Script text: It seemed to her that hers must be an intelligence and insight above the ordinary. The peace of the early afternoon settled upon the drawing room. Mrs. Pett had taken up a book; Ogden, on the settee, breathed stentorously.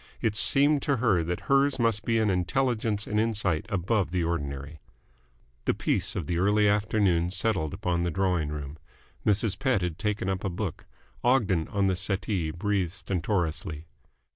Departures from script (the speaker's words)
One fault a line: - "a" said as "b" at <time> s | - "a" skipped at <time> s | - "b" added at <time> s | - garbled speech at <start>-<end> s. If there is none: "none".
none